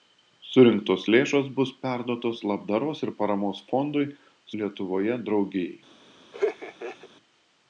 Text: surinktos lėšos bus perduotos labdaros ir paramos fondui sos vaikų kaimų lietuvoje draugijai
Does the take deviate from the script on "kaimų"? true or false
true